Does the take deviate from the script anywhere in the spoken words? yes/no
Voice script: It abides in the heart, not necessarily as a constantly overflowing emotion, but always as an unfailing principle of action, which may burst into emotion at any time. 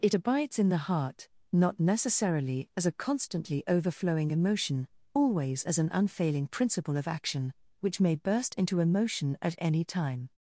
yes